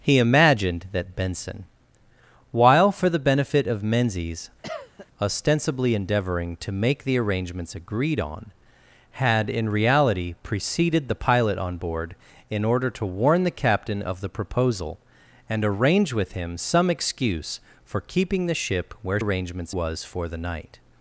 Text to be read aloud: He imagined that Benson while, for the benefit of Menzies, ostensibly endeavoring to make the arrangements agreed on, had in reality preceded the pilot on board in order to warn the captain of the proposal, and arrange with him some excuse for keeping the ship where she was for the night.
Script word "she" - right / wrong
wrong